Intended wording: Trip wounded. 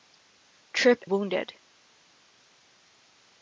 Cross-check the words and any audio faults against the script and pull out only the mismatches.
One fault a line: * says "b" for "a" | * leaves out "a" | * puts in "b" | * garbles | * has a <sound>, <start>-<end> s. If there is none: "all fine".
all fine